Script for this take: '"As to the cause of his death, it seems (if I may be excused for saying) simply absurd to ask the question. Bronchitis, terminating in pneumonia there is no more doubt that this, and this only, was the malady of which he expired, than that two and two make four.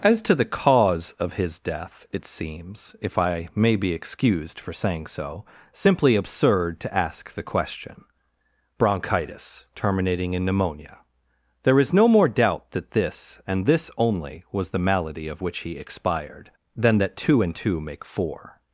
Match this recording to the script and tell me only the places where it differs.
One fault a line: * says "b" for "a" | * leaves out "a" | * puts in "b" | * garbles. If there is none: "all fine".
* puts in "so"